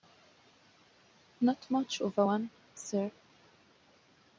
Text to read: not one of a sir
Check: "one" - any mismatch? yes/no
yes